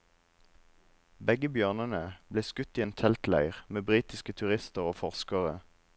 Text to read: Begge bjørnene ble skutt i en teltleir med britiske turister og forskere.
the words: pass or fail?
pass